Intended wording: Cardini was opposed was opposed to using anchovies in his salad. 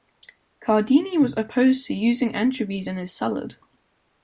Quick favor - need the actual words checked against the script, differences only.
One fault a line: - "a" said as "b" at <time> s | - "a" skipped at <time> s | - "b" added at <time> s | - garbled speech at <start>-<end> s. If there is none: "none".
- "was opposed" skipped at 1.9 s